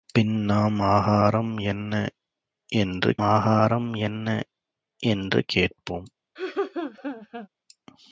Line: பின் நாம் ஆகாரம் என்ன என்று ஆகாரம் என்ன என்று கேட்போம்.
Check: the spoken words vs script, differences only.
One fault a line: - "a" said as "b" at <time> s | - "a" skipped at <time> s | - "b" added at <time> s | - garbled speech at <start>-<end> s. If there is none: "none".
none